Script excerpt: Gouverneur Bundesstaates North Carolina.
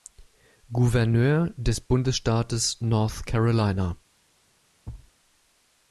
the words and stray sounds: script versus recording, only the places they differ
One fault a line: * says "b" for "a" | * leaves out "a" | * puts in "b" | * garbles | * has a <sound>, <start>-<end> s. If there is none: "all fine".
* puts in "des"
* has a thud, 4.9-5.1 s